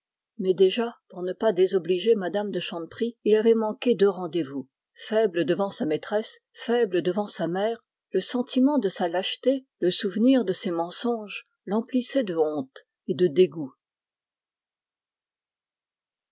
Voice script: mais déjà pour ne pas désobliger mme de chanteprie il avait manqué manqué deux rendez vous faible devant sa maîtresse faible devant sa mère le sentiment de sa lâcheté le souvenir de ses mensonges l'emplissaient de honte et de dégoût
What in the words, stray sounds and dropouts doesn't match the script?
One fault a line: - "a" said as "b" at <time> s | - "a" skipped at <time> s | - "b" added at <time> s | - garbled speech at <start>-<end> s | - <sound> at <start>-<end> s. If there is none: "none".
- "manqué" skipped at 3.9 s